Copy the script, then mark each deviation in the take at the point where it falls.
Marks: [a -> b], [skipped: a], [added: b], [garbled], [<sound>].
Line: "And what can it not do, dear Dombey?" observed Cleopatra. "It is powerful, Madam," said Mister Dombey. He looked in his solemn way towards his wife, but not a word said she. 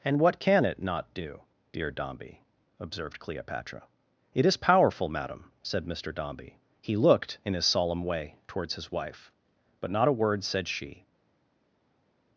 "And what can it not do, dear Dombey?" observed Cleopatra. "It is powerful, Madam," said Mister Dombey. He looked in his solemn way towards his wife, but not a word said she.